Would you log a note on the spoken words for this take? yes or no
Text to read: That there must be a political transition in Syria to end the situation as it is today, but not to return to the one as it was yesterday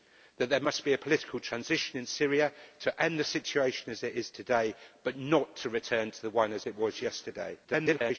yes